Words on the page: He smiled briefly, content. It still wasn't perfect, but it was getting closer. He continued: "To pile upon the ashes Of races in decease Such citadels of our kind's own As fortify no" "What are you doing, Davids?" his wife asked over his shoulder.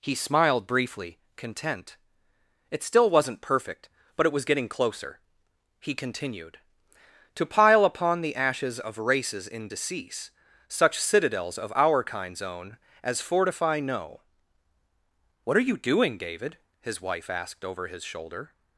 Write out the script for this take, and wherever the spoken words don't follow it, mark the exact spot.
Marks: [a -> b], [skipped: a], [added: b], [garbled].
He smiled briefly, content. It still wasn't perfect, but it was getting closer. He continued: "To pile upon the ashes Of races in decease Such citadels of our kind's own As fortify no" "What are you doing, [Davids?" -> David] his wife asked over his shoulder.